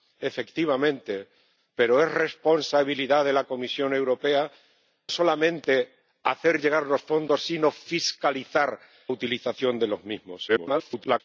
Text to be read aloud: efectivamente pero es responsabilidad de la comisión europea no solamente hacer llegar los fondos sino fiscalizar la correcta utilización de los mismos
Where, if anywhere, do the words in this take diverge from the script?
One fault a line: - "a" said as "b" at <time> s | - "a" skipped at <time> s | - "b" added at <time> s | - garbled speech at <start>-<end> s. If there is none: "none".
- "no" skipped at 4.5 s
- "la correcta" skipped at 8.8 s
- garbled speech at 10.5-11.2 s